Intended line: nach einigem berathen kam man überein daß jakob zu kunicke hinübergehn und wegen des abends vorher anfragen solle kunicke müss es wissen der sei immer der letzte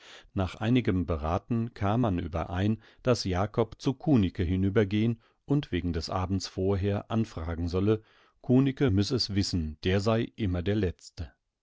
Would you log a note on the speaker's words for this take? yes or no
no